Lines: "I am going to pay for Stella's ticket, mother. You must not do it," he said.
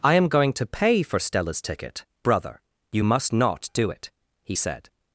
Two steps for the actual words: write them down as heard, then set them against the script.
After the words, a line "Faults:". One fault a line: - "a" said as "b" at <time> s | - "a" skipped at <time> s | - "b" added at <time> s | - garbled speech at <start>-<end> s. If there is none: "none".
"I am going to pay for Stella's ticket, brother. You must not do it," he said.
Faults:
- "mother" said as "brother" at 2.2 s